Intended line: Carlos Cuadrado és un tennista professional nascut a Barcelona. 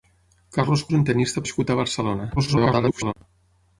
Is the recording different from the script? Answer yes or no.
yes